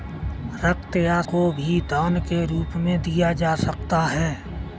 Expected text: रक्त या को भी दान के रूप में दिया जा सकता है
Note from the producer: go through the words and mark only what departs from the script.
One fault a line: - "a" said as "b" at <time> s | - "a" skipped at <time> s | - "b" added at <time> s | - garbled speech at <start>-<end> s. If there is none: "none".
none